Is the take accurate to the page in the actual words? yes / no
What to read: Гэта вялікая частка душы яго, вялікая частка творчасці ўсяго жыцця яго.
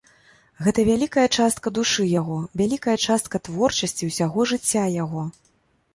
yes